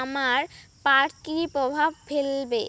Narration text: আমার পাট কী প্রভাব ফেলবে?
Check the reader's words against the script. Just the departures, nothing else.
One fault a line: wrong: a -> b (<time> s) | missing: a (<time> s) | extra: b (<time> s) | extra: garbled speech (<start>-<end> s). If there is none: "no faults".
no faults